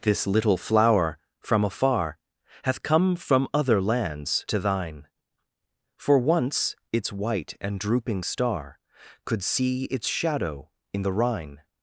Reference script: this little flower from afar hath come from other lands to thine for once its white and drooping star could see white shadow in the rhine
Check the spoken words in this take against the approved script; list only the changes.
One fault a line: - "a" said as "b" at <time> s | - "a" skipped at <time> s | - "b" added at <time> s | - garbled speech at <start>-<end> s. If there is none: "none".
- "white" said as "its" at 9.9 s